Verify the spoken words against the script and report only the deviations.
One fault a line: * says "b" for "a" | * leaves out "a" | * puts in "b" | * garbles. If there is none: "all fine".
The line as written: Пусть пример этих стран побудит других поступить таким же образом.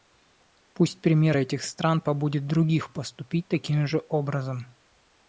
all fine